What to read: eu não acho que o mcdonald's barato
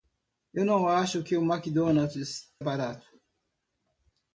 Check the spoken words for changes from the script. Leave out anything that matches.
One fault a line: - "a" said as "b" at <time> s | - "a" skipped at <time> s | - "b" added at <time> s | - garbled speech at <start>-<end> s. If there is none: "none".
none